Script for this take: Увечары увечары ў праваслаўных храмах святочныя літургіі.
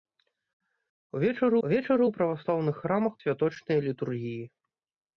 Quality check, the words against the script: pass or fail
pass